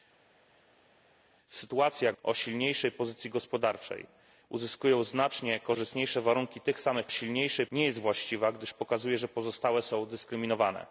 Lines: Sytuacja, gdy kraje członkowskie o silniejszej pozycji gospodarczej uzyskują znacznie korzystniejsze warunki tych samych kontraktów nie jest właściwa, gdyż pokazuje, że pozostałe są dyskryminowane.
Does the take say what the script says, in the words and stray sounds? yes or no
no